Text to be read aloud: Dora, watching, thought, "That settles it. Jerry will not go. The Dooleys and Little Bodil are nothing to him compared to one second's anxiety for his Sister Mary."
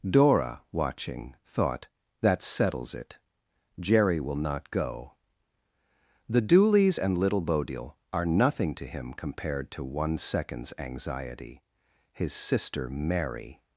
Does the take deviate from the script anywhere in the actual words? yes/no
yes